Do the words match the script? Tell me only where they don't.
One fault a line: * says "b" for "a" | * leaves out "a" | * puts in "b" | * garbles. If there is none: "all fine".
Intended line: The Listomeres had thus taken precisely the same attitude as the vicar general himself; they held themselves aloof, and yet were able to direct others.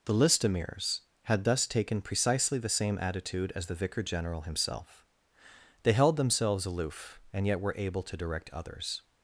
all fine